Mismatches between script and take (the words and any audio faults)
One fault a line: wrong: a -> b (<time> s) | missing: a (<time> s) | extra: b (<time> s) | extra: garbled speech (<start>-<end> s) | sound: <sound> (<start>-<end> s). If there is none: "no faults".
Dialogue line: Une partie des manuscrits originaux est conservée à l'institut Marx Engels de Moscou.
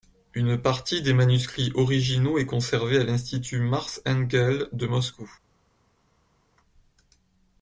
no faults